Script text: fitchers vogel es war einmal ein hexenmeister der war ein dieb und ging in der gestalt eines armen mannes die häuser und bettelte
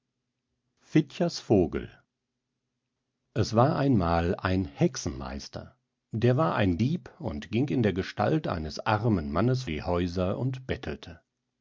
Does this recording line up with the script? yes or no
yes